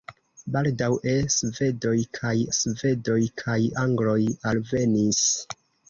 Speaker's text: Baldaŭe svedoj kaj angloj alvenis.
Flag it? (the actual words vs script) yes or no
yes